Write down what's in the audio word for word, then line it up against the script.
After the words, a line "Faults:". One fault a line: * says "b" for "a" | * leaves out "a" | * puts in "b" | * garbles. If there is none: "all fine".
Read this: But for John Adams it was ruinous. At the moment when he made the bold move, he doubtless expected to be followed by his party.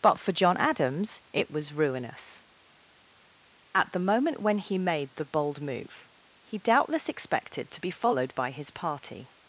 But for John Adams it was ruinous. At the moment when he made the bold move, he doubtless expected to be followed by his party.
Faults:
all fine